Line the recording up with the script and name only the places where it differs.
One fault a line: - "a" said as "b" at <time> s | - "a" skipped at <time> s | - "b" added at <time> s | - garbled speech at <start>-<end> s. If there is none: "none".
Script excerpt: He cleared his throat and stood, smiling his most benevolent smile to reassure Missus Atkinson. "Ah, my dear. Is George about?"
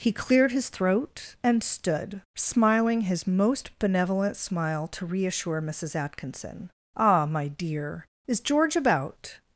none